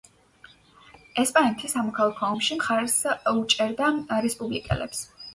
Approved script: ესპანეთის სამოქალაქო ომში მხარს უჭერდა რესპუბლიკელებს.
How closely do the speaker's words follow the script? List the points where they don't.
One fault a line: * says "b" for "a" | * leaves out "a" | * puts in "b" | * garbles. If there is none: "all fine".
all fine